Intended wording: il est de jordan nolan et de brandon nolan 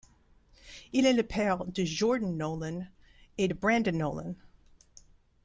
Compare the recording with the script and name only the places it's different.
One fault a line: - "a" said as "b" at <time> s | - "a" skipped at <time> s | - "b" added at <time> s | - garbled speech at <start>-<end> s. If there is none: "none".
- "le père" added at 1.1 s